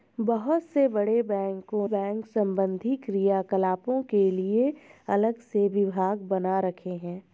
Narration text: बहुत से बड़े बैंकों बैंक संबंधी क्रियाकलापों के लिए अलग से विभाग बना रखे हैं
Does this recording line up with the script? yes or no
yes